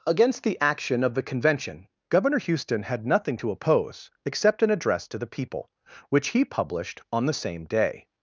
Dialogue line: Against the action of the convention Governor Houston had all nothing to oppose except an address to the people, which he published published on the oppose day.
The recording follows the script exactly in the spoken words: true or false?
false